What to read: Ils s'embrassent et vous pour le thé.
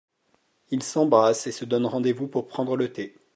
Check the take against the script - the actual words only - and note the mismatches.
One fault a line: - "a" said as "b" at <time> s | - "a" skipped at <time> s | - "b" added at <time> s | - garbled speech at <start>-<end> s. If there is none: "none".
- "se donnent rendez" added at 1.5 s
- "prendre" added at 2.5 s